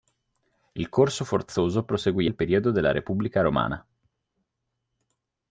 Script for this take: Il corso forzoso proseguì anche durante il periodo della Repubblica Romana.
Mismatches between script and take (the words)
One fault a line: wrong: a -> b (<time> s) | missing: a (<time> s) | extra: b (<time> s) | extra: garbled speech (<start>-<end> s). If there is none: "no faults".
missing: anche durante (2.3 s)